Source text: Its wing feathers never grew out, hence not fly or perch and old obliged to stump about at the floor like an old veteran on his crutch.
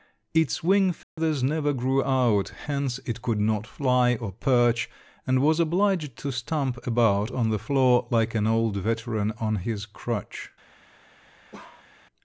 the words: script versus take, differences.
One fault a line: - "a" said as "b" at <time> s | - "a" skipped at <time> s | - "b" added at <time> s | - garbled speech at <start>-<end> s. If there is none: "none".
- "it could" added at 3.0 s
- "old" said as "was" at 5.4 s
- "at" said as "on" at 7.3 s